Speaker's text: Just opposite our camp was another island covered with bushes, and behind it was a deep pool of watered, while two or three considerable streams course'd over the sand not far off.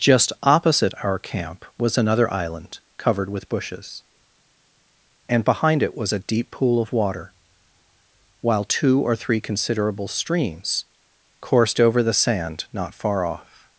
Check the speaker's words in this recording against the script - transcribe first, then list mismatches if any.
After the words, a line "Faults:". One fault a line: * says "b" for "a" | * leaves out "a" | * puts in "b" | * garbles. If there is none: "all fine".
Just opposite our camp was another island covered with bushes, and behind it was a deep pool of water, while two or three considerable streams course'd over the sand not far off.
Faults:
* says "water" for "watered"